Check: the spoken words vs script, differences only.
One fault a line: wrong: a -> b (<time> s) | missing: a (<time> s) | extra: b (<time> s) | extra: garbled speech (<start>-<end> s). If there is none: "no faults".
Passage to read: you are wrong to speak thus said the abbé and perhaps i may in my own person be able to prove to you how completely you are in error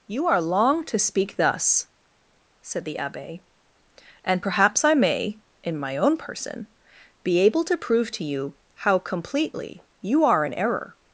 wrong: wrong -> long (0.4 s)